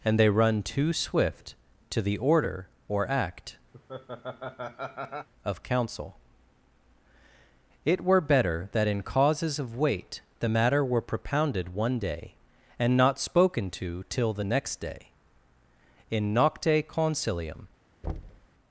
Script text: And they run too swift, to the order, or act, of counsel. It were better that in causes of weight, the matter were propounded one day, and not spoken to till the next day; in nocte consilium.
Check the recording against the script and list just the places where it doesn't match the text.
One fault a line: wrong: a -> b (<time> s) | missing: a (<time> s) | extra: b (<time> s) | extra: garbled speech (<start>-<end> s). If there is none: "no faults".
no faults